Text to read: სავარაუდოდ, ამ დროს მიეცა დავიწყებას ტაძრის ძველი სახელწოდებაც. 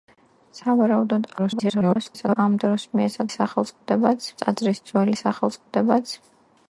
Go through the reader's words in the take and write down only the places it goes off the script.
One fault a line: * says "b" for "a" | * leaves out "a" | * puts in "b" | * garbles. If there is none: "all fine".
* garbles
* says "სახელწოდებაც" for "დავიწყებას"